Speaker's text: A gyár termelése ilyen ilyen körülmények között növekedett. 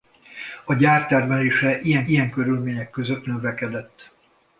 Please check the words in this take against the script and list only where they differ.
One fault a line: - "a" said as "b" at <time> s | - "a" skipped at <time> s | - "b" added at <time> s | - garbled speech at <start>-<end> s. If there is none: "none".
none